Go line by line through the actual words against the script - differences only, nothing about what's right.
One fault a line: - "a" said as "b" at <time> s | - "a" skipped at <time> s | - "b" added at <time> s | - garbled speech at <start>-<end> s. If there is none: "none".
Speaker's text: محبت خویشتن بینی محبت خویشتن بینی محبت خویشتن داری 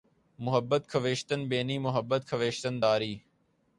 - "بینی محبت خویشتن" skipped at 2.8 s